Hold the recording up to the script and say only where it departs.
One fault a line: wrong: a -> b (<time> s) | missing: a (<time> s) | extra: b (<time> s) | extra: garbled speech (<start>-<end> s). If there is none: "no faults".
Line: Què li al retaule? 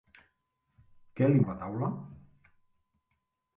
no faults